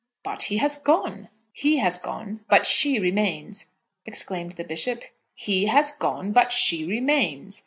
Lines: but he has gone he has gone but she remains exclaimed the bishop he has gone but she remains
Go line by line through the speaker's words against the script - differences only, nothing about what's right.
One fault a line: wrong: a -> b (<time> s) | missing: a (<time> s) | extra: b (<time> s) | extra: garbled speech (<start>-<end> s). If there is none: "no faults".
no faults